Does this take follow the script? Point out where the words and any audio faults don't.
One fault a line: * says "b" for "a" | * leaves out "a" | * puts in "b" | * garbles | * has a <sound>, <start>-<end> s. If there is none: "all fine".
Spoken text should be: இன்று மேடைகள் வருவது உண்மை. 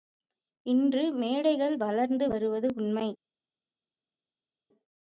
* puts in "வளர்ந்து"